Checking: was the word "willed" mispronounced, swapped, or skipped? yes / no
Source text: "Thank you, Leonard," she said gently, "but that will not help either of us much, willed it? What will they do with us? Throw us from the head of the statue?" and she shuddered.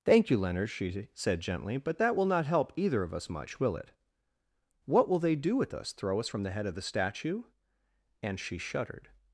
yes